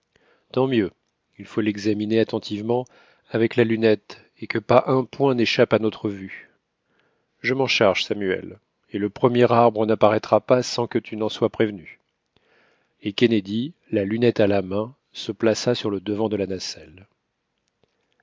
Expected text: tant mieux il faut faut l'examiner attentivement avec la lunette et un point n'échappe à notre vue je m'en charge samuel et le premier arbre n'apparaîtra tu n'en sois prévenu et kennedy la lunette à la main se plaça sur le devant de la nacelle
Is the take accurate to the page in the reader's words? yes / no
no